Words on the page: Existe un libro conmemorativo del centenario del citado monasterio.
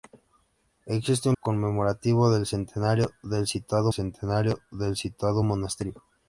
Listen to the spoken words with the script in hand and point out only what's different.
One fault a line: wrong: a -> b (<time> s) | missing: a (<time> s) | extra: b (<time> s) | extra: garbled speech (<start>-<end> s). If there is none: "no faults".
missing: libro (1.4 s)
extra: centenario del citado (3.9 s)